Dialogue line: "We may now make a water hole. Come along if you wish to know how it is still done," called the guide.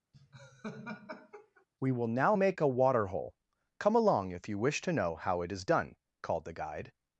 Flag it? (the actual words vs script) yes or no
yes